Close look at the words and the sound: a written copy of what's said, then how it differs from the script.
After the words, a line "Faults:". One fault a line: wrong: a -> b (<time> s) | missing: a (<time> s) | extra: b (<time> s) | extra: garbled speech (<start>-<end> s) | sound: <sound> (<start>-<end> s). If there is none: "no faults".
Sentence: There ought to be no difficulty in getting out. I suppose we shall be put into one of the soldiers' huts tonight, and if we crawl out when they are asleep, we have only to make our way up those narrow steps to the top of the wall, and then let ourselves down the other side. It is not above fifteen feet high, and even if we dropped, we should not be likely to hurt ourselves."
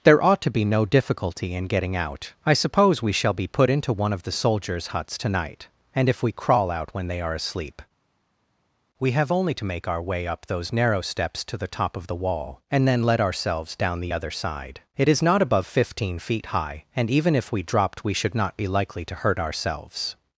There ought to be no difficulty in getting out. I suppose we shall be put into one of the soldiers' huts tonight, and if we crawl out when they are asleep, we have only to make our way up those narrow steps to the top of the wall, and then let ourselves down the other side. It is not above fifteen feet high, and even if we dropped, we should not be likely to hurt ourselves."
Faults:
no faults